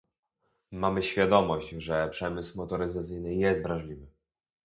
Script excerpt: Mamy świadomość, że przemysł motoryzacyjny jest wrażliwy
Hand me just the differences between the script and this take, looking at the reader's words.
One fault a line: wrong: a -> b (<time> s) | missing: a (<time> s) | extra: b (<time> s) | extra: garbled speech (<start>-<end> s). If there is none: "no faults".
no faults